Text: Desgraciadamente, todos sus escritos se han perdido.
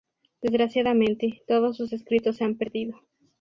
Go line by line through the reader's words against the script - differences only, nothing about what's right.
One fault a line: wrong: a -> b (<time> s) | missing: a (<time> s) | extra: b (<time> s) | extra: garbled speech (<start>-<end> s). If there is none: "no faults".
no faults